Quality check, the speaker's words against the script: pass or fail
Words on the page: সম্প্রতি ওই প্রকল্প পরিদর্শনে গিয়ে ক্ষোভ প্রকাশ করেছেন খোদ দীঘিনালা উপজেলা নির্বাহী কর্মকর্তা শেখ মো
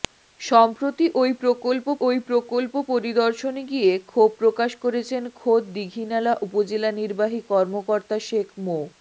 fail